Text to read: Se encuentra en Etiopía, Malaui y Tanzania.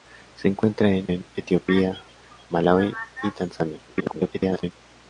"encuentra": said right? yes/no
yes